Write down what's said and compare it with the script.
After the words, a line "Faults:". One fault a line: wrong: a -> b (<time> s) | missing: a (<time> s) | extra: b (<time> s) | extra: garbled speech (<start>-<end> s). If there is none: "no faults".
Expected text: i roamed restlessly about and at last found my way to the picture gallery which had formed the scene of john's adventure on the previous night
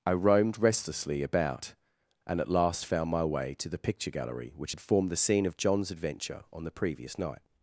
i roamed restlessly about and at last found my way to the picture gallery which had formed the scene of john's adventure on the previous night
Faults:
no faults